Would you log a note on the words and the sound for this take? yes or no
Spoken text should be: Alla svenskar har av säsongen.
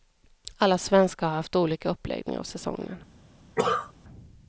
yes